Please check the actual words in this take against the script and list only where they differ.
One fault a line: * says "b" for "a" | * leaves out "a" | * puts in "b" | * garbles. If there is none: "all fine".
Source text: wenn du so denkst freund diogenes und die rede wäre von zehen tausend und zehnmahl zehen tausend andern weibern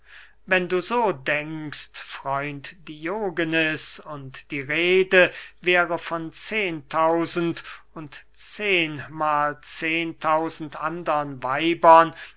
all fine